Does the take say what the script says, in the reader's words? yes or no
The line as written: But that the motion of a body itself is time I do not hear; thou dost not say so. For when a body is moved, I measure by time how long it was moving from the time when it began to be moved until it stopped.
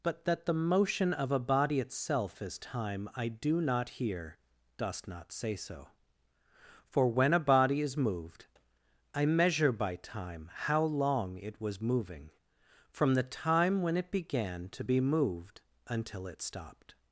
no